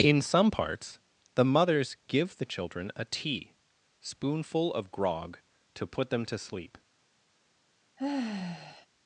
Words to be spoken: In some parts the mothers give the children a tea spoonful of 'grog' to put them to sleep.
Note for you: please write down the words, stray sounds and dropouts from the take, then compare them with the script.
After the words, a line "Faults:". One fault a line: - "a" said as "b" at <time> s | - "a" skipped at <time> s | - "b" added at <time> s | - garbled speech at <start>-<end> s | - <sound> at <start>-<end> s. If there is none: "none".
In some parts the mothers give the children a tea spoonful of 'grog' to put them to sleep.
Faults:
- sigh at 8.0-8.9 s